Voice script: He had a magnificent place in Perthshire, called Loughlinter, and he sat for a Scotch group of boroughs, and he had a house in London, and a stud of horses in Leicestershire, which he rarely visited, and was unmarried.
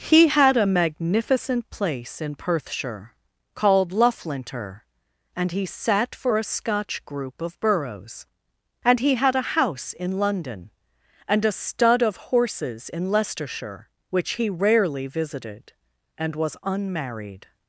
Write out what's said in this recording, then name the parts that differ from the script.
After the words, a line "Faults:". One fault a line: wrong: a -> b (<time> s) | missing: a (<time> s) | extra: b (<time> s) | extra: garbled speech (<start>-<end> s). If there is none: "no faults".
He had a magnificent place in Perthshire, called Loughlinter, and he sat for a Scotch group of boroughs, and he had a house in London, and a stud of horses in Leicestershire, which he rarely visited, and was unmarried.
Faults:
no faults